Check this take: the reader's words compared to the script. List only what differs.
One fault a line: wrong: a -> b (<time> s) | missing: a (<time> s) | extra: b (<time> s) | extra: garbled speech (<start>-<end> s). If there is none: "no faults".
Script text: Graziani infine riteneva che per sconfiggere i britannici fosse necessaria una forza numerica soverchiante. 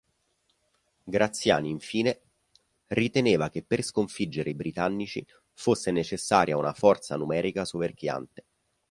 no faults